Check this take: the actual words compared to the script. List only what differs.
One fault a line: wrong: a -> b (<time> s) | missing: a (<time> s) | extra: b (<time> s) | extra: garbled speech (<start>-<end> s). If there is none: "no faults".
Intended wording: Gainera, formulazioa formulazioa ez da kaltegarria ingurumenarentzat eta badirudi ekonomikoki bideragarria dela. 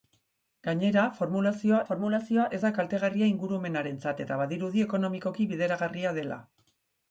no faults